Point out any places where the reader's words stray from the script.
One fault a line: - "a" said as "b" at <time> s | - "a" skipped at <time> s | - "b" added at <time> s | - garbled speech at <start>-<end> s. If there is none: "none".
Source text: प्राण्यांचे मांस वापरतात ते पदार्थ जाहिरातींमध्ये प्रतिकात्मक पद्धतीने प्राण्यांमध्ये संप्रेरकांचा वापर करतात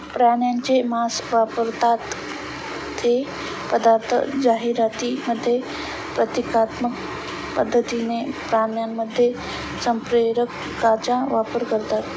none